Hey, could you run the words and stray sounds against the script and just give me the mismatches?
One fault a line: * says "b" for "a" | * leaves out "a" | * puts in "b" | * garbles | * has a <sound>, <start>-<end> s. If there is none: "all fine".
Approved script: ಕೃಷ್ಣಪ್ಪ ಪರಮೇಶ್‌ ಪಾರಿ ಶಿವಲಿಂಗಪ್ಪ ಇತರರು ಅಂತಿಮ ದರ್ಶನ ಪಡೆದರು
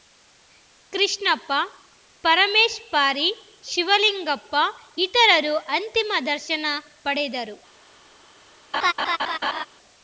* has a laugh, 8.7-9.7 s